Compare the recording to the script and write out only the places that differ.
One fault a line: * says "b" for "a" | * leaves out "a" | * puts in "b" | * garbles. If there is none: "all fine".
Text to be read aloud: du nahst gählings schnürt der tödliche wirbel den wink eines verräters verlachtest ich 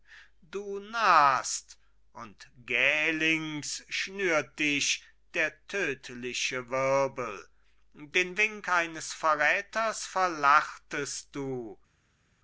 * puts in "und"
* puts in "dich"
* says "du" for "ich"